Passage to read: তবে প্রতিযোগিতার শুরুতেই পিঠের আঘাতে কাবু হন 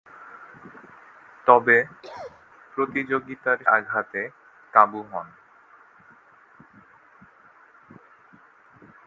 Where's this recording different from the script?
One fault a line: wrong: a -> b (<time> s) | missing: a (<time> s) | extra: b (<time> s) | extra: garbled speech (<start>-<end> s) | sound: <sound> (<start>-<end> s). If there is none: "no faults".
sound: cough (2.0-2.5 s)
missing: শুরুতেই পিঠের (3.6 s)